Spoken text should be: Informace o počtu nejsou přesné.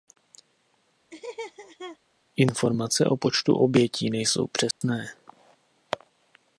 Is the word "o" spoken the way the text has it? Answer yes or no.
yes